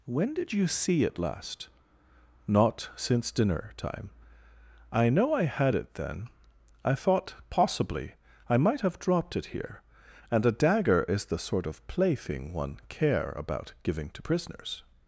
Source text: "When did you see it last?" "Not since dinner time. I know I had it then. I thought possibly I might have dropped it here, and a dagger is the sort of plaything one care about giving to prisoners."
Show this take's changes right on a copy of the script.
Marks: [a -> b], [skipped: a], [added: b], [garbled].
"When did you see it last?" "Not since dinner time. I know I had it then. I thought possibly I might have dropped it here, and a dagger is the sort of plaything one care about giving to prisoners."